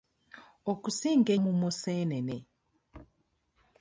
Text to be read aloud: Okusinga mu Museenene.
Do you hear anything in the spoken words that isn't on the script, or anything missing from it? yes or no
no